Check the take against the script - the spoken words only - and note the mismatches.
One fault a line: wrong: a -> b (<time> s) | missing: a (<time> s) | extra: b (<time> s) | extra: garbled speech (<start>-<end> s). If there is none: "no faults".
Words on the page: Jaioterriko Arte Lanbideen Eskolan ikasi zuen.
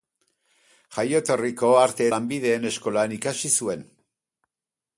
no faults